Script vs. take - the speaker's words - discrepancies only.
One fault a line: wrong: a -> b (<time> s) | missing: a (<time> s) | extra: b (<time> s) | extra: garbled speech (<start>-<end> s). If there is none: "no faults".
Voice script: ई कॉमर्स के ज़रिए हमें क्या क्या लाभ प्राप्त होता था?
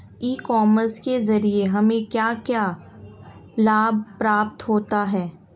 wrong: था -> है (5.0 s)